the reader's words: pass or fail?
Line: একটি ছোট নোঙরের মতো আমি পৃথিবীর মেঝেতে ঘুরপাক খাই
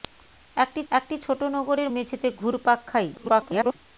fail